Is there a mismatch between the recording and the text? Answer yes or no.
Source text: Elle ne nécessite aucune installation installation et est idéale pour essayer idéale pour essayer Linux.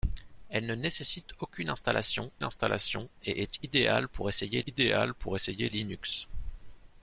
no